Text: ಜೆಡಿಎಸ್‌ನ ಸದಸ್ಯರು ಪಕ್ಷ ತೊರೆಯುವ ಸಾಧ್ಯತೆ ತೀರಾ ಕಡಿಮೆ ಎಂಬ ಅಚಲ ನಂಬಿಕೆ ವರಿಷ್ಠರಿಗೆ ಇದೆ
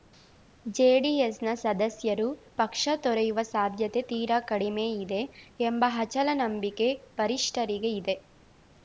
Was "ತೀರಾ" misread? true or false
false